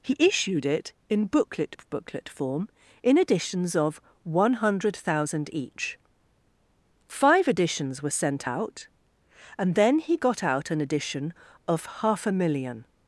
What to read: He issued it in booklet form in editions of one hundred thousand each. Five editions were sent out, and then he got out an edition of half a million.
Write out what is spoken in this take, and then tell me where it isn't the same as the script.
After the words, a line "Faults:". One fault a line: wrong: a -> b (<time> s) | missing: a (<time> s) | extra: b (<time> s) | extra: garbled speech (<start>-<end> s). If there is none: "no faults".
He issued it in booklet booklet form in editions of one hundred thousand each. Five editions were sent out, and then he got out an edition of half a million.
Faults:
extra: booklet (1.9 s)